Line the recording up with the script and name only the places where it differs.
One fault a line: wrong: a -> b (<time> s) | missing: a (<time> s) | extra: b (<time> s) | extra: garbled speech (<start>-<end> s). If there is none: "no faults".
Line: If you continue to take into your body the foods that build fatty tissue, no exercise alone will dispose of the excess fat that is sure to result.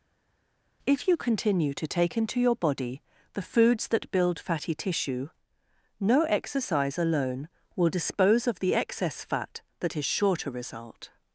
no faults